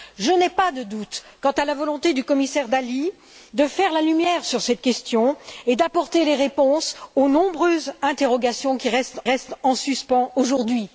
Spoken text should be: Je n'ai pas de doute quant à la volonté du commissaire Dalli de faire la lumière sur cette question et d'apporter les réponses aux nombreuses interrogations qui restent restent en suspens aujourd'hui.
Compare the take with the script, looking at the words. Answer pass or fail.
pass